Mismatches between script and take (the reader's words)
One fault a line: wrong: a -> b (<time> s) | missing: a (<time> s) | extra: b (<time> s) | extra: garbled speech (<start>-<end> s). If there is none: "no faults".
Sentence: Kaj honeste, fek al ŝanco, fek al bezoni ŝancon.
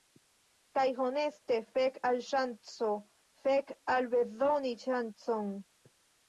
no faults